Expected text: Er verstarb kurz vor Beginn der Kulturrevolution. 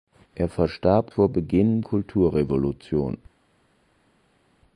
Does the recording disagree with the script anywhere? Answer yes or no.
yes